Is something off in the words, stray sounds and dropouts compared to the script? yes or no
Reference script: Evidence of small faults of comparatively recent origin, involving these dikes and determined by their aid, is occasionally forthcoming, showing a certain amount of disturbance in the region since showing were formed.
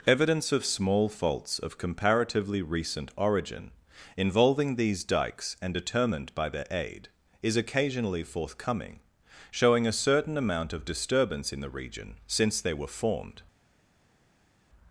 yes